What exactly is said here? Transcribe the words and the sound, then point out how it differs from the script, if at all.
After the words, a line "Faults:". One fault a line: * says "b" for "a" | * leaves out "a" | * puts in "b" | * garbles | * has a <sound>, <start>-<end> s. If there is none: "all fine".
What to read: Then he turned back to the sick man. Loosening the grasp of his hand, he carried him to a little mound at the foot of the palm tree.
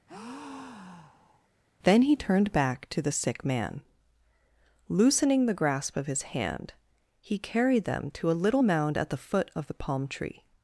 Then he turned back to the sick man. Loosening the grasp of his hand, he carried them to a little mound at the foot of the palm tree.
Faults:
* has a breath, 0.1-1.5 s
* says "them" for "him"